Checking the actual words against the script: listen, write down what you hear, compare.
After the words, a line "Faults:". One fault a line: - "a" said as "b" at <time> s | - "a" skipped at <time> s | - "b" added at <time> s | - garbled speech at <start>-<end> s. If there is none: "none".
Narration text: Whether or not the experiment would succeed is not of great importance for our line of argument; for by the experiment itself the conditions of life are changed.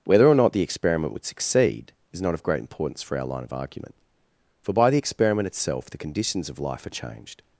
Whether or not the experiment would succeed is not of great importance for our line of argument; for by the experiment itself the conditions of life are changed.
Faults:
none